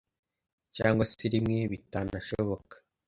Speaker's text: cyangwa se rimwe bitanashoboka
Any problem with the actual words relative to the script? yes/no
no